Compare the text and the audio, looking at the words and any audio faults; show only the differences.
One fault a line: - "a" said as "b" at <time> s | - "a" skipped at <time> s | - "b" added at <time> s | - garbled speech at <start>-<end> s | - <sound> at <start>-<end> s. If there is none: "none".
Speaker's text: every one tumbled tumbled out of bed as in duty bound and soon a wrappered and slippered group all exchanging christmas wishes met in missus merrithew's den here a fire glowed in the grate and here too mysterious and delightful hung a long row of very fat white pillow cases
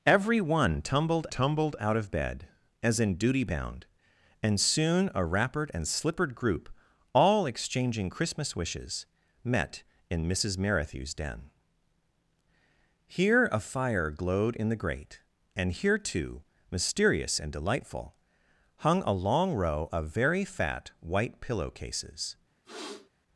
- sniff at 22.6-23.1 s